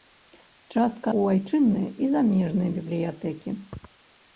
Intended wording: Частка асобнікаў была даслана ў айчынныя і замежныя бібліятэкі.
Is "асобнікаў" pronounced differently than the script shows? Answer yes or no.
yes